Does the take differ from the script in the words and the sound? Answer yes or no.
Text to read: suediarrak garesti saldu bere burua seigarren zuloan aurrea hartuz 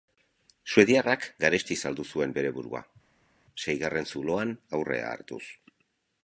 yes